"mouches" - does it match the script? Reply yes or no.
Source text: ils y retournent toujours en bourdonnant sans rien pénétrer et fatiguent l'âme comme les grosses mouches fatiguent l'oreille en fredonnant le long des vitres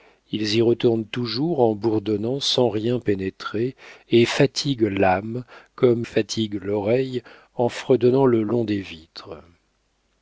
no